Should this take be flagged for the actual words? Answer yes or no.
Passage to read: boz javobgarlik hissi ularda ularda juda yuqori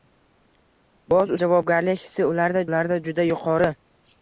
no